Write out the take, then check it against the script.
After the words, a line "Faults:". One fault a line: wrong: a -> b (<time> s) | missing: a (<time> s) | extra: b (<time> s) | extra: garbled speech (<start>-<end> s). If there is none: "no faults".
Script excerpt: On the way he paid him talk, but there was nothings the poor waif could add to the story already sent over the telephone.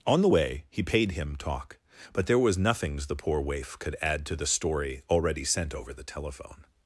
On the way he paid him talk, but there was nothings the poor waif could add to the story already sent over the telephone.
Faults:
no faults